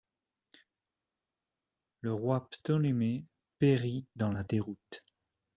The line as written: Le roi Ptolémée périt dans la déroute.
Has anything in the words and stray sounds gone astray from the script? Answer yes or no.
no